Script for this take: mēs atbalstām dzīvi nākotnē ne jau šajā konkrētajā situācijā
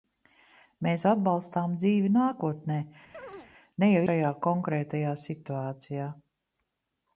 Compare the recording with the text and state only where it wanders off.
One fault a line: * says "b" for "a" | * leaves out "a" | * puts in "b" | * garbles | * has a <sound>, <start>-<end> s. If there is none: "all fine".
* has a chirp, 3.1-3.5 s